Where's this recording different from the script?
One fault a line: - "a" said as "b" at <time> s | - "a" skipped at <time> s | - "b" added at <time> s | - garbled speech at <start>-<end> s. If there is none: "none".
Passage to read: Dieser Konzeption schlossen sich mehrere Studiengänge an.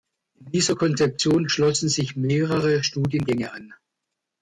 none